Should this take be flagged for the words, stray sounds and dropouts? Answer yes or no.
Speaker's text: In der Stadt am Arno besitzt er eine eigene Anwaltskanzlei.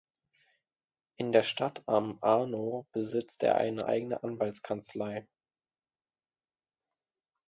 no